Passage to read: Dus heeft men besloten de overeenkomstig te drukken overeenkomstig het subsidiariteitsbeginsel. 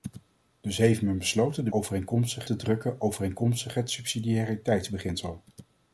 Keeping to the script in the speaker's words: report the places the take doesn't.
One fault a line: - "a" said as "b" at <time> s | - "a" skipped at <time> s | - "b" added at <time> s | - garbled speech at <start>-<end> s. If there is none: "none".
none